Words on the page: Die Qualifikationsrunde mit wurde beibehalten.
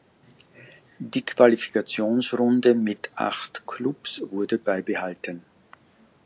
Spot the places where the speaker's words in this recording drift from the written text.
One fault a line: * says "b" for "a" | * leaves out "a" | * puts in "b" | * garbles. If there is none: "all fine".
* puts in "acht Klubs"